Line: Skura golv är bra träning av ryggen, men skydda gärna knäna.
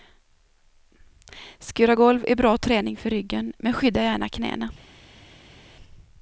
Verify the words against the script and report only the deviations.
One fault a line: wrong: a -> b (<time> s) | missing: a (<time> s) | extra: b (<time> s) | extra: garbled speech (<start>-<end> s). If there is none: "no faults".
wrong: av -> för (3.0 s)